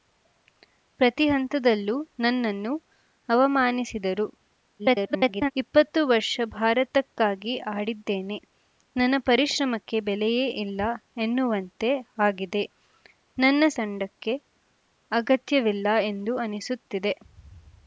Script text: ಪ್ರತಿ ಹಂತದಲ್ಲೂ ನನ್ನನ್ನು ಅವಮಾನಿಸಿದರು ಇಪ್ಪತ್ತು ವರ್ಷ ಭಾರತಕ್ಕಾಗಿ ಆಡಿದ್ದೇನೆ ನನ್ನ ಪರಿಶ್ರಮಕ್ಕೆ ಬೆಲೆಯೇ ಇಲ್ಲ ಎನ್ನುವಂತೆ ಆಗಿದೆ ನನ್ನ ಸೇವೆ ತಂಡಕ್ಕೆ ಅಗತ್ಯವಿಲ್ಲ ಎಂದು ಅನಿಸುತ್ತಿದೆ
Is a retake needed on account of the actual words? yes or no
yes